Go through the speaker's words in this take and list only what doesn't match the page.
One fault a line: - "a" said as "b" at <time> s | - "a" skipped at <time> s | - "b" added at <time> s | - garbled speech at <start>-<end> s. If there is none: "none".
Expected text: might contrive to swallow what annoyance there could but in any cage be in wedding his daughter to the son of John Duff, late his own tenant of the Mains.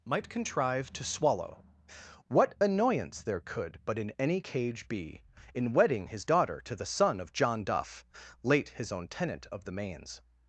none